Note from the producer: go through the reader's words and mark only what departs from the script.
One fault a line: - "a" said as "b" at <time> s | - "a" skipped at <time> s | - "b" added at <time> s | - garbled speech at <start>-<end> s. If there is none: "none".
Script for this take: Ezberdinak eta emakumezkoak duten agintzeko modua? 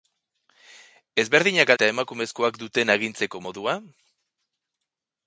none